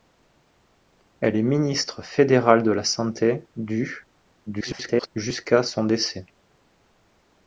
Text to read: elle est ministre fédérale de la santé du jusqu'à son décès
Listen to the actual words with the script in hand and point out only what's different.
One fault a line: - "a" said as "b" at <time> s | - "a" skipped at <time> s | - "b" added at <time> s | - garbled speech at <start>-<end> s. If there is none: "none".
- garbled speech at 4.5-5.1 s